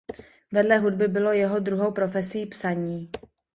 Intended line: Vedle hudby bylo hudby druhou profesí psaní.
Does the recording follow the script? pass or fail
fail